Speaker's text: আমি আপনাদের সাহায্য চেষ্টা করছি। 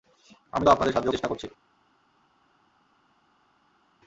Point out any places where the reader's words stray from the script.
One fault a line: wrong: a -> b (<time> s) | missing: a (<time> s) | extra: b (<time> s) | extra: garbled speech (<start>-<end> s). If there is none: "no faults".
no faults